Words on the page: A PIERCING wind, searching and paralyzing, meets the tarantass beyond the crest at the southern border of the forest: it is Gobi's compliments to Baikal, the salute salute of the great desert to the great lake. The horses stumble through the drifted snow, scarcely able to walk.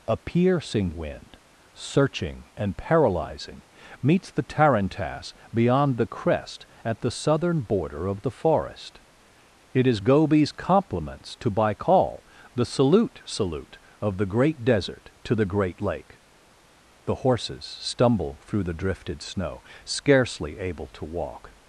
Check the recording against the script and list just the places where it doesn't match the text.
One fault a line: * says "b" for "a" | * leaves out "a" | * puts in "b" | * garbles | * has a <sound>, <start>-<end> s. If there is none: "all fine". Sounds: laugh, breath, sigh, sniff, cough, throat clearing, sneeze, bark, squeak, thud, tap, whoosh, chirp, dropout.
all fine